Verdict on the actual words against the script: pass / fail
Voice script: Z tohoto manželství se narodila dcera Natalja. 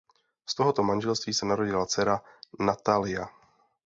pass